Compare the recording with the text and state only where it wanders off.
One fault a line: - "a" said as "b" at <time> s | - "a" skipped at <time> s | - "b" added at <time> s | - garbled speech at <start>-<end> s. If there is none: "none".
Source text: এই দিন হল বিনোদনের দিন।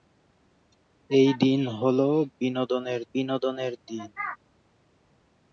- "বিনোদনের" added at 3.1 s